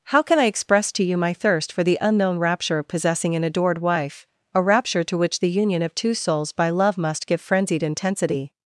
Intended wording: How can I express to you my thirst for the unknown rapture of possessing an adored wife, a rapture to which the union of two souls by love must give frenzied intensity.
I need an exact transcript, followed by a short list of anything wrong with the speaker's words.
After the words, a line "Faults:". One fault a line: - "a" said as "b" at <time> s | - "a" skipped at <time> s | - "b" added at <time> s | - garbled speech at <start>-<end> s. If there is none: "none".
How can I express to you my thirst for the unknown rapture of possessing an adored wife, a rapture to which the union of two souls by love must give frenzied intensity.
Faults:
none